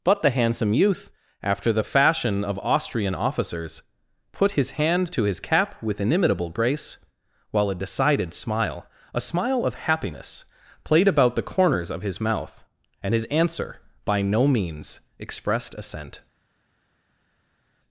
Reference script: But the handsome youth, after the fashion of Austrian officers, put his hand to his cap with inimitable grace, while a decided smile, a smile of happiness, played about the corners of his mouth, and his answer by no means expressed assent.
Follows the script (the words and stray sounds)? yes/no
yes